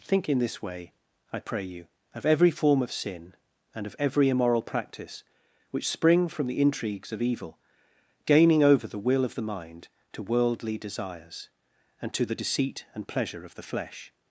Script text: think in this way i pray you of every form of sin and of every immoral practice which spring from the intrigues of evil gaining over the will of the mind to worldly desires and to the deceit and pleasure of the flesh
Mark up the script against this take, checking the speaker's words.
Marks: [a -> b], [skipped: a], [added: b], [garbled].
think in this way i pray you of every form of sin and of every immoral practice which spring from the intrigues of evil gaining over the will of the mind to worldly desires and to the deceit and pleasure of the flesh